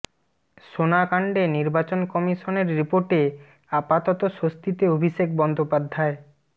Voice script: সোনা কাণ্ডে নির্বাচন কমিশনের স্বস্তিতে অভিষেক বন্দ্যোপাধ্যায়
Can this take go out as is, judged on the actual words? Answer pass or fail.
fail